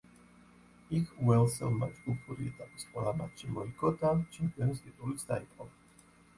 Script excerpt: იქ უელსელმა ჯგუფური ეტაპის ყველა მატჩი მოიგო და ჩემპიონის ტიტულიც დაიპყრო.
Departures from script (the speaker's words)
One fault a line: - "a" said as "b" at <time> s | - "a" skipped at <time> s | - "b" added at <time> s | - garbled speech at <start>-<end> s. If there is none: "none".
none